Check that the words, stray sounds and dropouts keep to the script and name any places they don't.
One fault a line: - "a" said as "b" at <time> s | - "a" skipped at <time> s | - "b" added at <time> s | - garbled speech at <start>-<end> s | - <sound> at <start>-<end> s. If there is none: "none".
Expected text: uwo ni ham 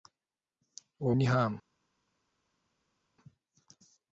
none